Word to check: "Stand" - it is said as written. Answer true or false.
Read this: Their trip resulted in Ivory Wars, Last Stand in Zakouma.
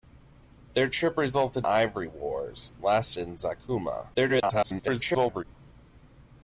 false